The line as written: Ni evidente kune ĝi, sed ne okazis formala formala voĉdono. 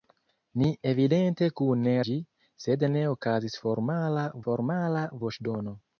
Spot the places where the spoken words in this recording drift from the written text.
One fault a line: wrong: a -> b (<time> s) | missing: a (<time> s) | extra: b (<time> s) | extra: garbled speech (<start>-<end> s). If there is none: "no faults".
no faults